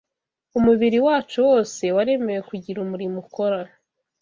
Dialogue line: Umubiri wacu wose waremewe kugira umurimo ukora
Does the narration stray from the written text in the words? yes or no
no